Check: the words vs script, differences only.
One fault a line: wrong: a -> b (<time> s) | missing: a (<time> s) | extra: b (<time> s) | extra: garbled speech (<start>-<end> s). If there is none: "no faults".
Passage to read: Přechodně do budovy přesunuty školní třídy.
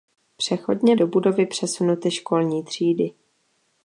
no faults